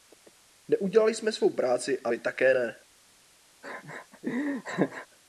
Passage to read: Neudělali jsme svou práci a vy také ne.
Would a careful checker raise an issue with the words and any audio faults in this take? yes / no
yes